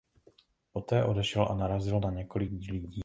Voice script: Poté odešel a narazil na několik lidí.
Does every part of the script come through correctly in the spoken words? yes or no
yes